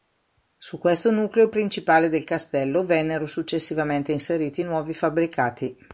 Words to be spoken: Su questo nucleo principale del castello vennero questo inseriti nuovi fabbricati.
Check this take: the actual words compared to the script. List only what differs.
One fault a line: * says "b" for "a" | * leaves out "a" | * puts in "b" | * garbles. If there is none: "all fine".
* says "successivamente" for "questo"